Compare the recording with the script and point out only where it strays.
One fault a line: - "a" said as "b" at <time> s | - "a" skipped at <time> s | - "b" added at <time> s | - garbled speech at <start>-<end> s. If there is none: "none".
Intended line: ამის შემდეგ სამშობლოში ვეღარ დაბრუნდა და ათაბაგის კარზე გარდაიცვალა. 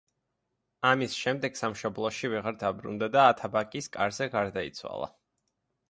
none